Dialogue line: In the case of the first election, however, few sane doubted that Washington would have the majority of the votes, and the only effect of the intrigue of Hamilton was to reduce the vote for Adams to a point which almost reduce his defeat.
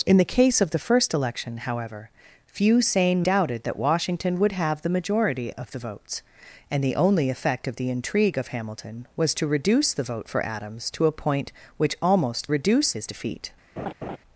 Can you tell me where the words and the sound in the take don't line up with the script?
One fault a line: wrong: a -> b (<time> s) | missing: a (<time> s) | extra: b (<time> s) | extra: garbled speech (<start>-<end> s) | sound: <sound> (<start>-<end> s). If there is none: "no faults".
sound: laugh (13.8-14.2 s)